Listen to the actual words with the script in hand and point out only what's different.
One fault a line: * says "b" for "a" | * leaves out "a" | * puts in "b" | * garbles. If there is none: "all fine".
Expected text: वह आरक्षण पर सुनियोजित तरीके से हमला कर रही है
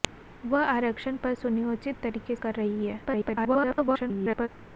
* leaves out "से हमला"
* garbles